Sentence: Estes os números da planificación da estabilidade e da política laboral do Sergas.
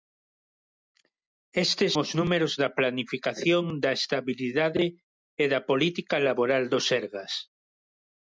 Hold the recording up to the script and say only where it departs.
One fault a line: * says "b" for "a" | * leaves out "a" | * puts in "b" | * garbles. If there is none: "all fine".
all fine